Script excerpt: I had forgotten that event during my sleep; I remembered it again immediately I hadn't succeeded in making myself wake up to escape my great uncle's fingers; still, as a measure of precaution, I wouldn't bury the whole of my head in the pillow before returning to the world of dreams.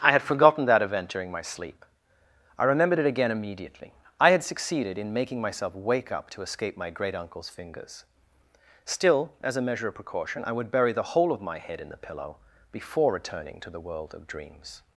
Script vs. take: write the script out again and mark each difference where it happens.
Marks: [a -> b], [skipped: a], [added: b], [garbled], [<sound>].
I had forgotten that event during my sleep; I remembered it again immediately I [hadn't -> had] succeeded in making myself wake up to escape my great uncle's fingers; still, as a measure of precaution, I [wouldn't -> would] bury the whole of my head in the pillow before returning to the world of dreams.